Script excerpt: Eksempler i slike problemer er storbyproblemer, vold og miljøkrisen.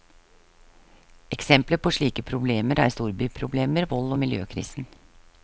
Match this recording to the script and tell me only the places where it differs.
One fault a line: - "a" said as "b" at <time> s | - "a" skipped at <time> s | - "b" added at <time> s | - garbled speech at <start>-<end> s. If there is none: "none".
- "i" said as "på" at 1.8 s